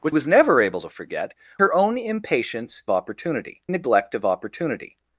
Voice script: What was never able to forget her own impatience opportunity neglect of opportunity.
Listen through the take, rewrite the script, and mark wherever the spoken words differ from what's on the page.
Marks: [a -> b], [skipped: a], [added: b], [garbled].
What was never able to forget her own impatience opportunity neglect of opportunity.